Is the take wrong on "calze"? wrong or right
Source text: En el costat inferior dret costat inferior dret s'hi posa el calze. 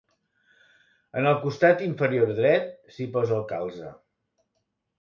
right